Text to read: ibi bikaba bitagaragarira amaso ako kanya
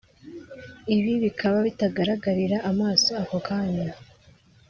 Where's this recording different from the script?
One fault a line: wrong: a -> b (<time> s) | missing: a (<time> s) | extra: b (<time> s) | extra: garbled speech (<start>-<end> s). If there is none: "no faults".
no faults